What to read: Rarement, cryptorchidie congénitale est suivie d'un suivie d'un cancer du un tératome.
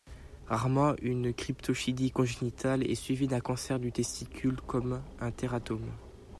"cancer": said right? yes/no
no